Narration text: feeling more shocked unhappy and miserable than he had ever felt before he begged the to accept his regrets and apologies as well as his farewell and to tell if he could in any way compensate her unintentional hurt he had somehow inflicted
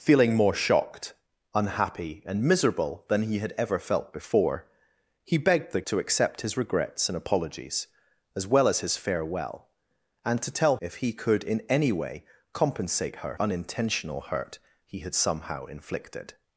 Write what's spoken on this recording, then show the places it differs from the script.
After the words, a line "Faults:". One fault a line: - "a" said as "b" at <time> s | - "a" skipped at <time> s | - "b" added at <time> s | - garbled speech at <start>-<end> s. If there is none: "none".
feeling more shocked unhappy and miserable than he had ever felt before he begged the to accept his regrets and apologies as well as his farewell and to tell if he could in any way compensate her unintentional hurt he had somehow inflicted
Faults:
none